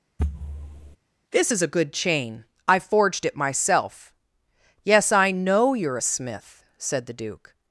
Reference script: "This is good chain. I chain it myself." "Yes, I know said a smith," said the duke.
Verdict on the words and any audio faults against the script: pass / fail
fail